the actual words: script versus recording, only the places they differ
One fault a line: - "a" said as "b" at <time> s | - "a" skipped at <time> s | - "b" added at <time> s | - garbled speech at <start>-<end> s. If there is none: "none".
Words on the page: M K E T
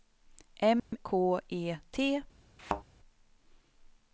none